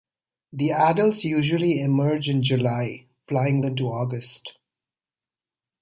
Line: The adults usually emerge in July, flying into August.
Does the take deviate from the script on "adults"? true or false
false